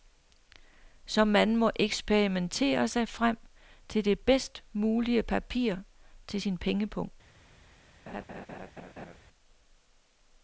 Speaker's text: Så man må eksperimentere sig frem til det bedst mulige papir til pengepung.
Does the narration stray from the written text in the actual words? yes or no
yes